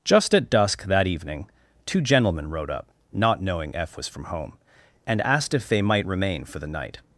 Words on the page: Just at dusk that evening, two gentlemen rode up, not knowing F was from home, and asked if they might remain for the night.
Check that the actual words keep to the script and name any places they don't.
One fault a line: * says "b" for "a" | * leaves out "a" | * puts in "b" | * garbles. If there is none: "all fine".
all fine